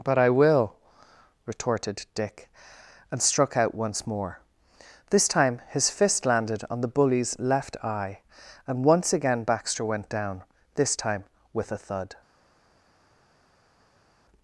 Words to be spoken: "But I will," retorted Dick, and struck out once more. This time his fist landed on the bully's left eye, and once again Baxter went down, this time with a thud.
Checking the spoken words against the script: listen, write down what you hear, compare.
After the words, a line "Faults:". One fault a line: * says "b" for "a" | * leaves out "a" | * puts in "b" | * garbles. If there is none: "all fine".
"But I will," retorted Dick, and struck out once more. This time his fist landed on the bully's left eye, and once again Baxter went down, this time with a thud.
Faults:
all fine